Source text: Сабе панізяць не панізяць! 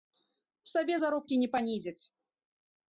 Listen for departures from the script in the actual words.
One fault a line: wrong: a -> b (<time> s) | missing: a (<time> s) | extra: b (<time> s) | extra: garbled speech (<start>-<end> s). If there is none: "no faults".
wrong: панізяць -> заробкі (1.0 s)